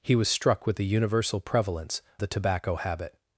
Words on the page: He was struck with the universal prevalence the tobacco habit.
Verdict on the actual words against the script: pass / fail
pass